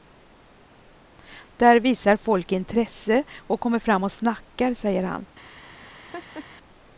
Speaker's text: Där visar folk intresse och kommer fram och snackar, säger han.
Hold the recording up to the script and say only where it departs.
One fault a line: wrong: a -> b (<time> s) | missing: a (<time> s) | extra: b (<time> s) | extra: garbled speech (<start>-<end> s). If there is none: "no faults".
no faults